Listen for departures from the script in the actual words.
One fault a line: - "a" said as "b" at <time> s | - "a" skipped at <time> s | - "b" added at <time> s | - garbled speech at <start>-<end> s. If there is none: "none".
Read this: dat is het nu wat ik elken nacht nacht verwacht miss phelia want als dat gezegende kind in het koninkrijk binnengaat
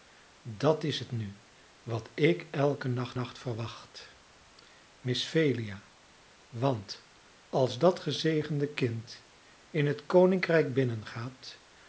none